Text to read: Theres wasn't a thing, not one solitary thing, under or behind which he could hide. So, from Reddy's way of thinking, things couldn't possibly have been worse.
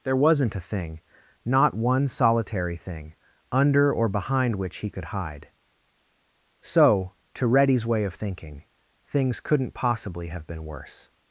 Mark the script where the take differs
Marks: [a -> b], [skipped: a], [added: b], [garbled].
[Theres -> There] wasn't a thing, not one solitary thing, under or behind which he could hide. So, [from -> to] Reddy's way of thinking, things couldn't possibly have been worse.